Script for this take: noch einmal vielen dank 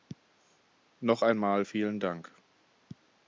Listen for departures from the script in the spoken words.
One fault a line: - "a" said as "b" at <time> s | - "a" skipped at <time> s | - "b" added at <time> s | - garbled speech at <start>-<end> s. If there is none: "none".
none